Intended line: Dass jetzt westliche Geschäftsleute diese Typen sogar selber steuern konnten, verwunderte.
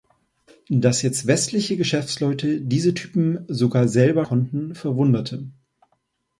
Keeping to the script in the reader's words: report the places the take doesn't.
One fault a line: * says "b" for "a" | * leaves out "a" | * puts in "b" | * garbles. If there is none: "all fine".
* leaves out "steuern"